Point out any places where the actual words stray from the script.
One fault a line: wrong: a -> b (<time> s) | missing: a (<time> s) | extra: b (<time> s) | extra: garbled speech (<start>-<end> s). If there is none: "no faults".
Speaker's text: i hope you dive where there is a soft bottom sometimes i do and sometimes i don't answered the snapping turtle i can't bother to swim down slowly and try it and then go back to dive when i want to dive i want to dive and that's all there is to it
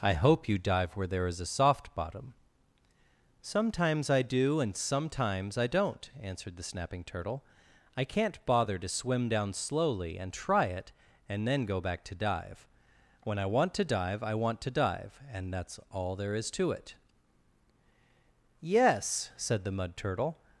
extra: yes said the mud turtle (18.6 s)